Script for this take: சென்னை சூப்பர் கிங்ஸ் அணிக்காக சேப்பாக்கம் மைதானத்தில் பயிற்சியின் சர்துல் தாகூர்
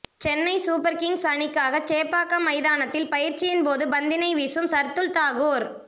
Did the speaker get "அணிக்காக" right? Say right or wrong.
right